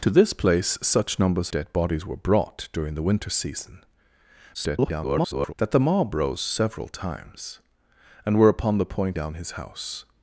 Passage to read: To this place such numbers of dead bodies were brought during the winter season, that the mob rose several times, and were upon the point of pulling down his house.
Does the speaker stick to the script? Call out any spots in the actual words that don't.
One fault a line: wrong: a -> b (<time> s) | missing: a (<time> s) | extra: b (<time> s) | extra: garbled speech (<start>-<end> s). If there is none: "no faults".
missing: of (1.5 s)
extra: garbled speech (4.5-5.5 s)
missing: of pulling (9.2 s)